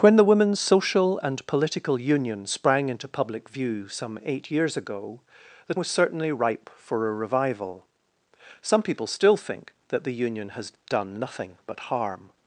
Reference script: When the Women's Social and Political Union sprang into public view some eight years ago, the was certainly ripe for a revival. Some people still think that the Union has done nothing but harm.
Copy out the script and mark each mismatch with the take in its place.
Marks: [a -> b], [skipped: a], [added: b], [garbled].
When the Women's Social and Political Union sprang into public view some eight years ago, the was certainly ripe for a revival. Some people still think that the Union has done nothing but harm.